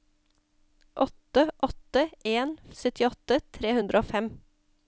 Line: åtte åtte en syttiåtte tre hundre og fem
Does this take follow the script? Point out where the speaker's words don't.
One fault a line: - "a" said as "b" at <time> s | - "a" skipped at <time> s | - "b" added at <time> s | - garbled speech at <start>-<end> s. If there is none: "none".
none